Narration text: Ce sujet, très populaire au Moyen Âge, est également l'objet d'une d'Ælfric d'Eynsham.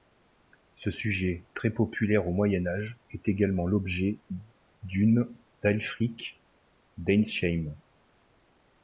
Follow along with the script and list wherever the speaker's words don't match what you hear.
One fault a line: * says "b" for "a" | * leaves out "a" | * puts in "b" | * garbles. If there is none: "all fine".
all fine